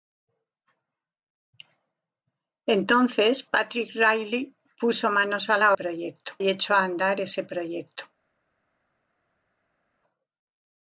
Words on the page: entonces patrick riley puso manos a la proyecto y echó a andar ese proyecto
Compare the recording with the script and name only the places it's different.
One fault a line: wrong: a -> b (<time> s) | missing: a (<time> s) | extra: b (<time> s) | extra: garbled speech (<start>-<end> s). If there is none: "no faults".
no faults